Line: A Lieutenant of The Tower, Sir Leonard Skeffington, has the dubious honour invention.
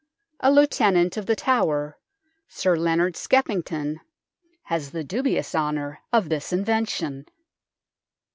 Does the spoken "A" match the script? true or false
true